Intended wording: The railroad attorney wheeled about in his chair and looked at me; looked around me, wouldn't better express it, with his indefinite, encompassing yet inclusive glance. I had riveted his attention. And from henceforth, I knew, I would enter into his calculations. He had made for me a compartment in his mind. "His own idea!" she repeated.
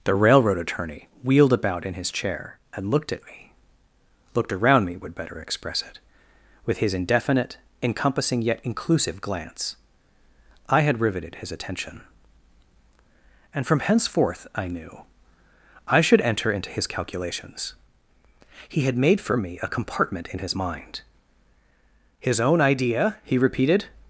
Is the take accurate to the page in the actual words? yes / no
no